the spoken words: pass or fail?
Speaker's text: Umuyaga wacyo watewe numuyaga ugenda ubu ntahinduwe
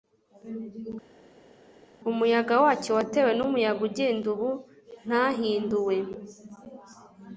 pass